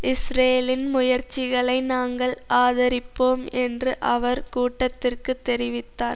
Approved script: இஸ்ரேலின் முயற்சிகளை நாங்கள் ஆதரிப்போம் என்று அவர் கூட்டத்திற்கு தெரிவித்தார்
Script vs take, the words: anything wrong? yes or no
no